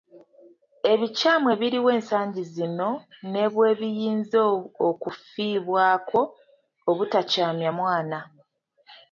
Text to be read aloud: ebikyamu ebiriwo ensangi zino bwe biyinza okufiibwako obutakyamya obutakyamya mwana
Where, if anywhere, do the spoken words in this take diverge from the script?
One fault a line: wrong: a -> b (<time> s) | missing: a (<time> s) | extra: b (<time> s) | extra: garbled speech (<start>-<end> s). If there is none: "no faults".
extra: ne (3.3 s)
missing: obutakyamya (7.7 s)